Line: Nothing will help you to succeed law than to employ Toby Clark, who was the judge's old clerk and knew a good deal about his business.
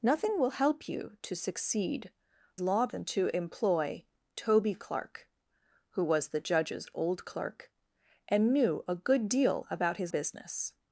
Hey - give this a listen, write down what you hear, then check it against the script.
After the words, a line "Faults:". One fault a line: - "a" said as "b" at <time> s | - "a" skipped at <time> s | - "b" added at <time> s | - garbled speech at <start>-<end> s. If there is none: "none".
Nothing will help you to succeed law than to employ Toby Clark, who was the judge's old clerk and knew a good deal about his business.
Faults:
none